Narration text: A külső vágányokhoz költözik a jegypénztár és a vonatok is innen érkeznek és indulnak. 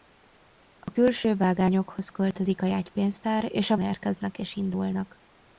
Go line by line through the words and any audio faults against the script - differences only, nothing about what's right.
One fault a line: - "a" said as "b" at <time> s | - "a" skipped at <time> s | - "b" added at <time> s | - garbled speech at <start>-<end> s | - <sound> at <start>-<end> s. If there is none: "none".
- dropout at 0.8-0.9 s
- "vonatok is innen" skipped at 3.8 s